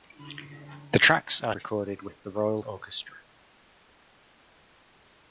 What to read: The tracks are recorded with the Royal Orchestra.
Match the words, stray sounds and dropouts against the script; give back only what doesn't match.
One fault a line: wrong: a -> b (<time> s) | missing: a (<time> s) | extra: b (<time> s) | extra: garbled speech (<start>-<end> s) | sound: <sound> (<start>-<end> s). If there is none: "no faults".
no faults